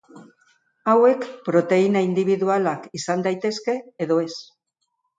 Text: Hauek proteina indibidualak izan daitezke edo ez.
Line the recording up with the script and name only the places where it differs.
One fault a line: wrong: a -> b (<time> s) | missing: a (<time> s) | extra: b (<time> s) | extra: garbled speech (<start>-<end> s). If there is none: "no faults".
no faults